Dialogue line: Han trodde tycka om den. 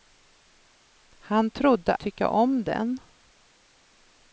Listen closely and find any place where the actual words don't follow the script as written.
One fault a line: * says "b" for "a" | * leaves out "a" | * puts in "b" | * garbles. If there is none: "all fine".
all fine